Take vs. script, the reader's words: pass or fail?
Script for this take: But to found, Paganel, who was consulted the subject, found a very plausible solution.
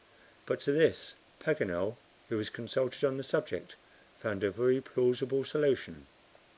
fail